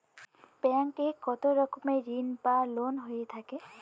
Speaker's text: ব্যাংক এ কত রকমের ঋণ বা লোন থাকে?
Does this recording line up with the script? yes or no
no